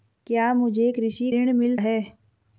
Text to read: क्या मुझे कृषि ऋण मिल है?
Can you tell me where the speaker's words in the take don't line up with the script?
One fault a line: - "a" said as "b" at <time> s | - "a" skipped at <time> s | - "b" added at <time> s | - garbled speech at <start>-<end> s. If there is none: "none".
none